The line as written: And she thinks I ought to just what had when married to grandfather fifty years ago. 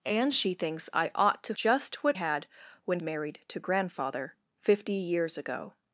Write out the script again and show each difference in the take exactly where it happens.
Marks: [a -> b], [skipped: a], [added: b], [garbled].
And she thinks I ought to just what had when married to grandfather fifty years ago.